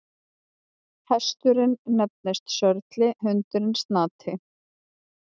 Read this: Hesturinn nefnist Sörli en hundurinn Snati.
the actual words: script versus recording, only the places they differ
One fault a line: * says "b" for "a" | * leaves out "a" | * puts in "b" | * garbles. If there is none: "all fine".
* leaves out "en"